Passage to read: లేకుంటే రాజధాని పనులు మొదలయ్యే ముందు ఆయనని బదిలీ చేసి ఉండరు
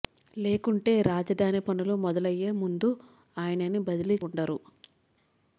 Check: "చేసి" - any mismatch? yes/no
yes